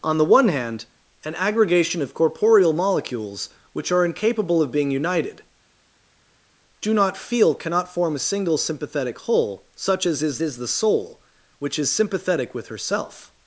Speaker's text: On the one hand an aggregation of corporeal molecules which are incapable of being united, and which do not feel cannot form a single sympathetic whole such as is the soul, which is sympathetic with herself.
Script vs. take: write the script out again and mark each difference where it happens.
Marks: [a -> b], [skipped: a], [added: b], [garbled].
On the one hand an aggregation of corporeal molecules which are incapable of being united, [skipped: and which] do not feel cannot form a single sympathetic whole such as is [added: is] the soul, which is sympathetic with herself.